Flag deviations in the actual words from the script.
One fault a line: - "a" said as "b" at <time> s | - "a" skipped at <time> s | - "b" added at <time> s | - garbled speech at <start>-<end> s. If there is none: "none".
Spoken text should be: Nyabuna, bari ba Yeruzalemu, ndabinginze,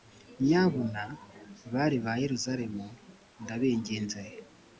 none